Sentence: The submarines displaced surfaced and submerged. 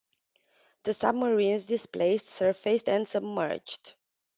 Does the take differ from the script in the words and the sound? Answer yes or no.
no